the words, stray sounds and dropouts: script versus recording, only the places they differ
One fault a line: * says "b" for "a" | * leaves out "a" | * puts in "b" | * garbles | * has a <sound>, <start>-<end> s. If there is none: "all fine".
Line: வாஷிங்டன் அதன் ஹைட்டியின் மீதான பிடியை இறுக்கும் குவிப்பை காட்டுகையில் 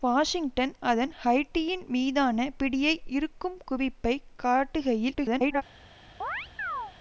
* garbles
* has a chirp, 6.2-6.9 s